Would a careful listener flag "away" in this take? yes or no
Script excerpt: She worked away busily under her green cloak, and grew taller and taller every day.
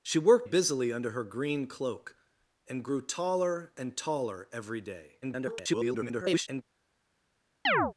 yes